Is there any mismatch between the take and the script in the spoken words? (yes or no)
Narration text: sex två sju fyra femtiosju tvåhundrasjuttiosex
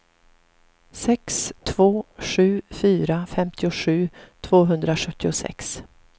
no